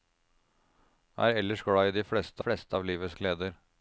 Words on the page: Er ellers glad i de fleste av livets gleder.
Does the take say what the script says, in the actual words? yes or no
no